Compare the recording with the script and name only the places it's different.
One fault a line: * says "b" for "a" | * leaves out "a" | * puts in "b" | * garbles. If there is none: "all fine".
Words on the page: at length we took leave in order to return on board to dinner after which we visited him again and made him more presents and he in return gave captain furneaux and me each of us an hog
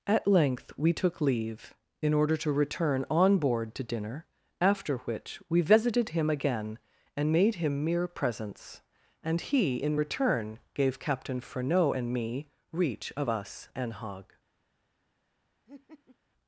* says "mere" for "more"
* says "reach" for "each"